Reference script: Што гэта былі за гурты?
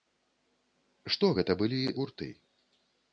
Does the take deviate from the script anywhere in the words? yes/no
yes